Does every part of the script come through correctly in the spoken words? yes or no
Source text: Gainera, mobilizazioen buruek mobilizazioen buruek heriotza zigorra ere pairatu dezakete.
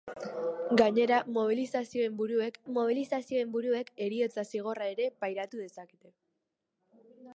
yes